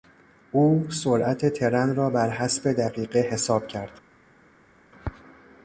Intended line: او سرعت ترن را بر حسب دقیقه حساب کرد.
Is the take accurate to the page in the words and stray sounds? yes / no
yes